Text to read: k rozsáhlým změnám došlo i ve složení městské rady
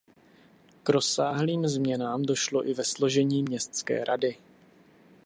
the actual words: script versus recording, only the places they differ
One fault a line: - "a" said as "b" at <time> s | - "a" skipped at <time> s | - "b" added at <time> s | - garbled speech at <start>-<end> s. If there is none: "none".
none